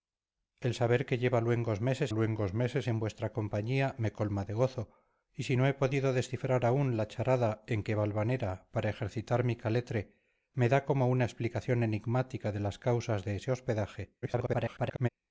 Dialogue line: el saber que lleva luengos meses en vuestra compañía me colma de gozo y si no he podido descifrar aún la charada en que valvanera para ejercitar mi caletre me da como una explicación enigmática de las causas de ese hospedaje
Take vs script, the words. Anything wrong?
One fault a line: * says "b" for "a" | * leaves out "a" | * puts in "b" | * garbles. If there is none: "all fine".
* puts in "luengos meses"
* garbles